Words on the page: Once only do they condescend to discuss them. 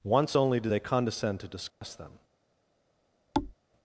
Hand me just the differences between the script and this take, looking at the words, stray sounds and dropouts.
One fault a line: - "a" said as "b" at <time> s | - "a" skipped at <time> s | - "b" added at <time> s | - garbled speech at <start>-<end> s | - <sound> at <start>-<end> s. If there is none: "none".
- dropout at 1.7-1.8 s
- thud at 3.3-3.5 s